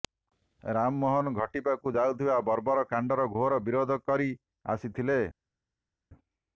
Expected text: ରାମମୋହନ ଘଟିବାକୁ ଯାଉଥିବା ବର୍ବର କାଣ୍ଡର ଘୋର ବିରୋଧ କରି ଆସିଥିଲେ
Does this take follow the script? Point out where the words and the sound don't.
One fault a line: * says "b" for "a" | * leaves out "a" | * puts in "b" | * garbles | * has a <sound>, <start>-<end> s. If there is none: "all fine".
all fine